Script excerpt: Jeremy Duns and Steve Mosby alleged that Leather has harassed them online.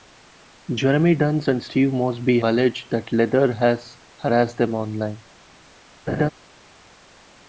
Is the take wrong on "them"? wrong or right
right